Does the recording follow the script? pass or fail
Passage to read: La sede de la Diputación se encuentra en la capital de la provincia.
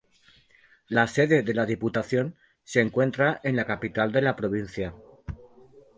pass